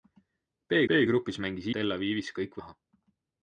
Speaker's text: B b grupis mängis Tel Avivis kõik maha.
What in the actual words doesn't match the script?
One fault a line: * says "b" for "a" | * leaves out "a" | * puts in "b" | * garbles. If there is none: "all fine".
all fine